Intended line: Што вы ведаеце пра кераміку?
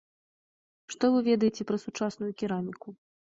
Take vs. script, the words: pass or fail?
fail